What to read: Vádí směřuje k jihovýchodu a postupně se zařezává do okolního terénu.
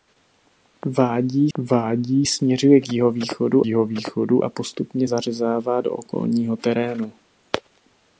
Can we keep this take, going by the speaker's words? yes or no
no